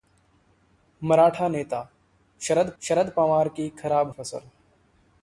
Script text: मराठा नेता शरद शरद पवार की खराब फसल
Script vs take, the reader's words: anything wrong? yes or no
no